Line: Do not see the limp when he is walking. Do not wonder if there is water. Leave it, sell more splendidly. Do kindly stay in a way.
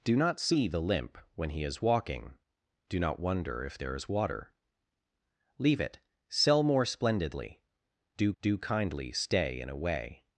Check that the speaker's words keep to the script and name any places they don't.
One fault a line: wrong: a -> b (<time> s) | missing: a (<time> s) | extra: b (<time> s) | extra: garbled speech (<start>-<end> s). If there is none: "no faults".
extra: do (8.4 s)